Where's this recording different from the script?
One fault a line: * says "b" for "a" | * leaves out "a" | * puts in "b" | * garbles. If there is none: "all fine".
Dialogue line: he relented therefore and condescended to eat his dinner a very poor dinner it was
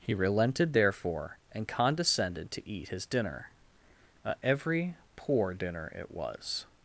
* says "every" for "very"